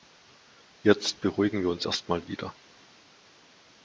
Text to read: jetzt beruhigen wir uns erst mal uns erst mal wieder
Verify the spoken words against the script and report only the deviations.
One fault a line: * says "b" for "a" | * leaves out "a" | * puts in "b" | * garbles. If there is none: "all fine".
* leaves out "uns erst mal"